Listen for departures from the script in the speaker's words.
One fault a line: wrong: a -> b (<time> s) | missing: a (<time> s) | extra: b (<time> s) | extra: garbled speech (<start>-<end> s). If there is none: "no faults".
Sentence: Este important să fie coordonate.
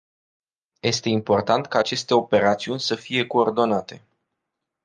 extra: ca aceste operațiuni (1.7 s)